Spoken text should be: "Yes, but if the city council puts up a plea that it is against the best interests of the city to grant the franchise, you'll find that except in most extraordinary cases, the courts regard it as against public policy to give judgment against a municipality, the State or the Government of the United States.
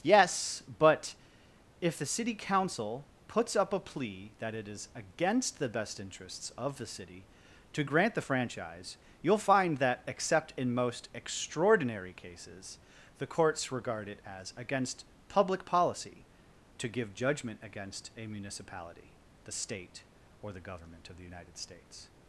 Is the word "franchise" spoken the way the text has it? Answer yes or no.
yes